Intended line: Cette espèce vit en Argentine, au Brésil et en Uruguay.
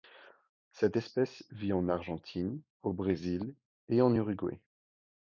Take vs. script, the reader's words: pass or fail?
pass